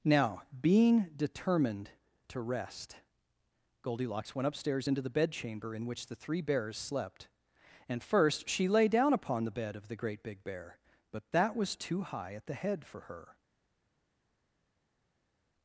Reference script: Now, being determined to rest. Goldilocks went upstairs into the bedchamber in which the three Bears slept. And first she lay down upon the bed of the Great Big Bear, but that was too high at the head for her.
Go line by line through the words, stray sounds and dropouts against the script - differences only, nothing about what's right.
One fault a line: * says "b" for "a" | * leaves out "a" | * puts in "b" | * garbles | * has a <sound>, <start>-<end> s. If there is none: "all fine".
all fine